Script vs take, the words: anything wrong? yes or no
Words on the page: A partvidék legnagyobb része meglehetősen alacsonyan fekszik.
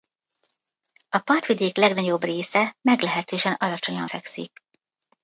no